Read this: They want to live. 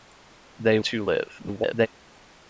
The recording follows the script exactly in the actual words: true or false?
false